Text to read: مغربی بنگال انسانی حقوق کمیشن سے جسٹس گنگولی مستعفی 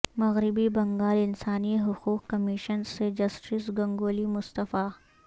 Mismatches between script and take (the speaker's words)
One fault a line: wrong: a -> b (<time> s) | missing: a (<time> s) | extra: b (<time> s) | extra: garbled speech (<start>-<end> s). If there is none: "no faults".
no faults